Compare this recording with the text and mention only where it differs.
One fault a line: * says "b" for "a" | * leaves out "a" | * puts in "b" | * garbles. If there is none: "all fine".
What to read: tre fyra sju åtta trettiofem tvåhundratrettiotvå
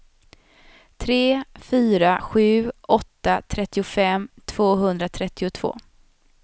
all fine